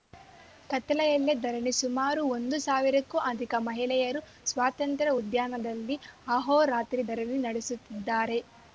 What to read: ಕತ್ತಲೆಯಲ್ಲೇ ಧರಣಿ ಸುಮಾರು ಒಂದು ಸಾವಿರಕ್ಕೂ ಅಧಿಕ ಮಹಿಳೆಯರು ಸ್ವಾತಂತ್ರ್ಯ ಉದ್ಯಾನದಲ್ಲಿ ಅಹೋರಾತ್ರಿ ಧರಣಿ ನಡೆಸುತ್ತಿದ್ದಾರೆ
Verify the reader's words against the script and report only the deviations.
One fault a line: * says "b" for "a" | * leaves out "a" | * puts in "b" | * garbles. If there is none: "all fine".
all fine